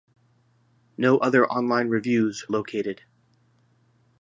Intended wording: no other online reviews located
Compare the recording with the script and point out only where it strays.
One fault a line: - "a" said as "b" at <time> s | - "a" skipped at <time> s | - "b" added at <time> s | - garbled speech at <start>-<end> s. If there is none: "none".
none